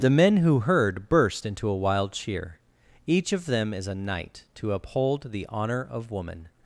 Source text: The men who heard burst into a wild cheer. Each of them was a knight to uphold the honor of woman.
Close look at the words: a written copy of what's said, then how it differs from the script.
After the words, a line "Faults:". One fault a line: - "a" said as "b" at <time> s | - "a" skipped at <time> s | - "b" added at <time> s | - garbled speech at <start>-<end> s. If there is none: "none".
The men who heard burst into a wild cheer. Each of them is a knight to uphold the honor of woman.
Faults:
- "was" said as "is" at 3.7 s